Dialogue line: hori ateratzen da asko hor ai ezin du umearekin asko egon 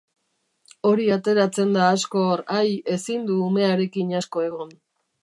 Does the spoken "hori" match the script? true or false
true